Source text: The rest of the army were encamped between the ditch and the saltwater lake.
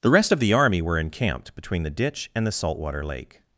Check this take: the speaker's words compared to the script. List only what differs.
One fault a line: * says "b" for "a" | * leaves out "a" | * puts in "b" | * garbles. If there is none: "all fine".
all fine